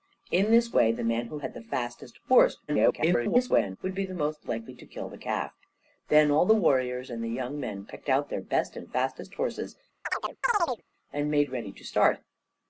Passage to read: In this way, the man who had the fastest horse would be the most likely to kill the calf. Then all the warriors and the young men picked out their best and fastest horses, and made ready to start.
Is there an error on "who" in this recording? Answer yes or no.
no